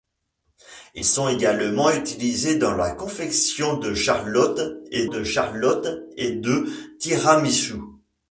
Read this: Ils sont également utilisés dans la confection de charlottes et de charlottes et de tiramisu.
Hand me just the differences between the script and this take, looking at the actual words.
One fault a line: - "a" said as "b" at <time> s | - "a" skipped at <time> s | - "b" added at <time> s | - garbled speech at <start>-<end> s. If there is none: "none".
none